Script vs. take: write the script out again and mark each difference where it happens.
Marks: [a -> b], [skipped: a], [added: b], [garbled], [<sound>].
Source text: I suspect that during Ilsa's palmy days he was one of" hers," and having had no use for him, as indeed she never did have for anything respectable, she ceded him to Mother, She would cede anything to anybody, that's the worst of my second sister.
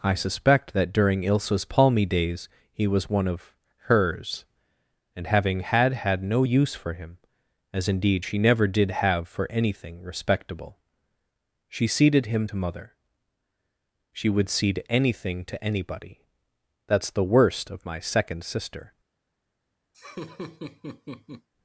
I suspect that during Ilsa's palmy days he was one of" hers," and having had [added: had] no use for him, as indeed she never did have for anything respectable, she ceded him to Mother, She would cede anything to anybody, that's the worst of my second sister. [laugh]